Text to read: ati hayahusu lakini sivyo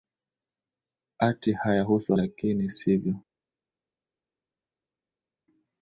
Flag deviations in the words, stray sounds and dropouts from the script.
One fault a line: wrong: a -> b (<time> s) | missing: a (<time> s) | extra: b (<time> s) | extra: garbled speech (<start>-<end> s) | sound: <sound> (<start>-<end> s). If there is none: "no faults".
no faults